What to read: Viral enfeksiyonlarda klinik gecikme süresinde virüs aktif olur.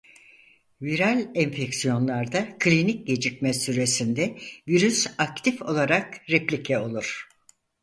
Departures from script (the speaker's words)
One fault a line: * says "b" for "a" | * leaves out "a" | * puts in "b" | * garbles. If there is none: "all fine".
* puts in "olarak replike"